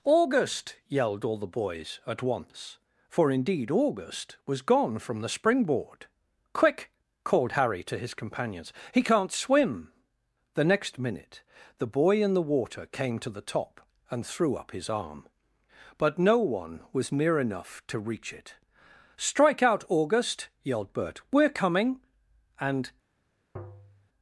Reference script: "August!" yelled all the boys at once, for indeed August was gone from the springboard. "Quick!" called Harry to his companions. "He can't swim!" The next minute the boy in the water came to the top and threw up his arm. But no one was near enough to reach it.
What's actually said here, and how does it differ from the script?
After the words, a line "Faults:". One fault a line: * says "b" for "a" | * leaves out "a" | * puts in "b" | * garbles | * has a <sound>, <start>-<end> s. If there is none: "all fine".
"August!" yelled all the boys at once, for indeed August was gone from the springboard. "Quick!" called Harry to his companions. "He can't swim!" The next minute the boy in the water came to the top and threw up his arm. But no one was near enough to reach it. "Strike out, August!" yelled Bert. "We're coming," and
Faults:
* puts in "Strike out August yelled Bert We're coming and"
* has a tap, 23.6-24.1 s